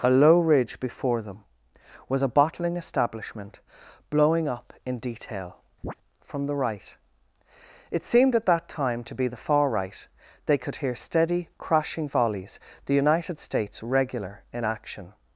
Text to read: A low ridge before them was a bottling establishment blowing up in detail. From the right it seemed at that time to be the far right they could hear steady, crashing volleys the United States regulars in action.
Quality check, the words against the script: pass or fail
fail